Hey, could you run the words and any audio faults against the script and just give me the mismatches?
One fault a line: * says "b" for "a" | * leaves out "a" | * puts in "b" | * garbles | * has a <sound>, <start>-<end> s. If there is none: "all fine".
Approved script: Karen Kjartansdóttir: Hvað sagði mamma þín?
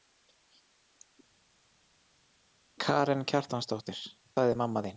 * leaves out "Hvað"